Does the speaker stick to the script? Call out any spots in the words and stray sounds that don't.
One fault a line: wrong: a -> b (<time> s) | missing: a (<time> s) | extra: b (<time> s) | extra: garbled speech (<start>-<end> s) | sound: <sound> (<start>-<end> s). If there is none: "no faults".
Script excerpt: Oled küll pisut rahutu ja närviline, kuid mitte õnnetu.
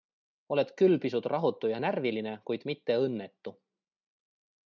no faults